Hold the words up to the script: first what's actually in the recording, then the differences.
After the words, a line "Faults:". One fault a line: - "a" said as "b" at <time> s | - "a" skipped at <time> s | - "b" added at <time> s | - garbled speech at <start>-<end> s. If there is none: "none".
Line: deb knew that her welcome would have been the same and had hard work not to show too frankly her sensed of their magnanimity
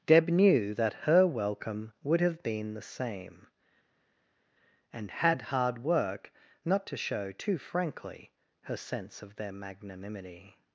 deb knew that her welcome would have been the same and had hard work not to show too frankly her sense of their magnanimity
Faults:
- "sensed" said as "sense" at 8.8 s